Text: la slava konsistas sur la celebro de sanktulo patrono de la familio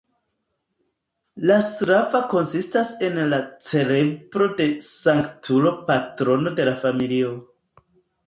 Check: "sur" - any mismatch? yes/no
yes